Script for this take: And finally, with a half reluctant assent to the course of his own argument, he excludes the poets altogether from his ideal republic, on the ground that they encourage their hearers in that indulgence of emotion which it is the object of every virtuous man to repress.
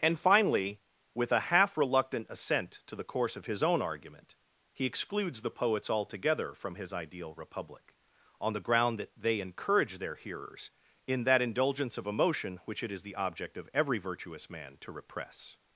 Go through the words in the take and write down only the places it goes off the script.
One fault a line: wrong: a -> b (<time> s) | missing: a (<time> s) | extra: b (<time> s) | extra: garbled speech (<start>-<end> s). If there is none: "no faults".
no faults